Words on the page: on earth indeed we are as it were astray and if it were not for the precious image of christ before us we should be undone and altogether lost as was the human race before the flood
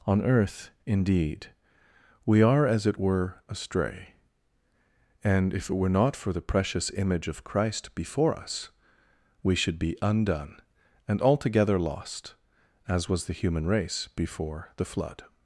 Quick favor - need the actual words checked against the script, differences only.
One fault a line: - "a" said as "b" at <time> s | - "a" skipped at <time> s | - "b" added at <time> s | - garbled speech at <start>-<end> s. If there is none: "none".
none